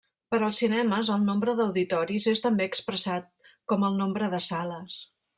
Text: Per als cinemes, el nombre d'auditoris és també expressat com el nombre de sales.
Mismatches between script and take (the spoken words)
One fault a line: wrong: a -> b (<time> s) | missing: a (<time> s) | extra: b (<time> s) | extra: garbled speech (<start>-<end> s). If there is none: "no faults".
no faults